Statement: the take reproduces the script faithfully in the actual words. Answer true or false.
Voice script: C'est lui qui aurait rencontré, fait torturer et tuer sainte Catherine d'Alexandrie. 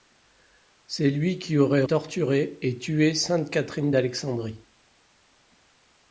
false